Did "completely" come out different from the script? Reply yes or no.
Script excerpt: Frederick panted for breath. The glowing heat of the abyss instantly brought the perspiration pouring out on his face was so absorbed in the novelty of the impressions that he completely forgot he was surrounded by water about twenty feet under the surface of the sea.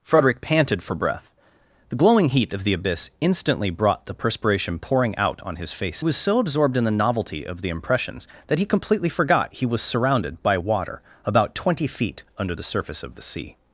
no